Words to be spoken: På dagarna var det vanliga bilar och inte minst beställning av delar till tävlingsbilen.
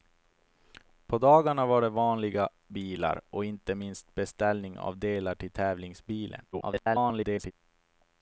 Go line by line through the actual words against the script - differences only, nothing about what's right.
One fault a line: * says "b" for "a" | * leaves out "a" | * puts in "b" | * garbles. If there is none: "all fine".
* garbles